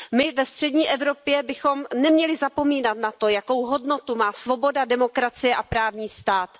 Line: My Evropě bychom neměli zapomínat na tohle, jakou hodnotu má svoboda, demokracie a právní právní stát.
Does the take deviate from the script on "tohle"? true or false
true